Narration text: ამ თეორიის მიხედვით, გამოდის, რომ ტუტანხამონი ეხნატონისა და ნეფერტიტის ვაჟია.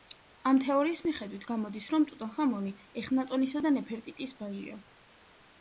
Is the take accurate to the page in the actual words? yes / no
yes